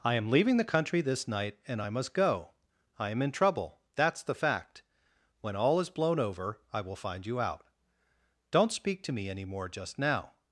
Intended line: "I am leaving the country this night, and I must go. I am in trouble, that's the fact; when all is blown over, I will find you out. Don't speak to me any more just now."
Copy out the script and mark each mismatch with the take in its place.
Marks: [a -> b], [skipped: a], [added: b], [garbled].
"I am leaving the country this night, and I must go. I am in trouble, that's the fact; when all is blown over, I will find you out. Don't speak to me any more just now."